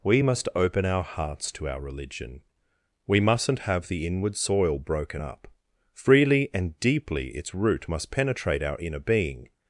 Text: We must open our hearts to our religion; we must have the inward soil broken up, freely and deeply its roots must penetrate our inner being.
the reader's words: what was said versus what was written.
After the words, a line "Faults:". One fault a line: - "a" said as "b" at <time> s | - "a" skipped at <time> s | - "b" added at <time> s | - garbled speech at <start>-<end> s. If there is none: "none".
We must open our hearts to our religion; we mustn't have the inward soil broken up, freely and deeply its root must penetrate our inner being.
Faults:
- "must" said as "mustn't" at 3.2 s
- "roots" said as "root" at 7.5 s